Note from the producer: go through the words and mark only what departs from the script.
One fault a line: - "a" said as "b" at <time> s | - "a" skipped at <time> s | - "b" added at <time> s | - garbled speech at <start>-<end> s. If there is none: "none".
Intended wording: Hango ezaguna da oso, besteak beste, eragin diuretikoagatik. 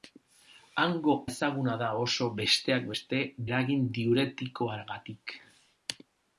none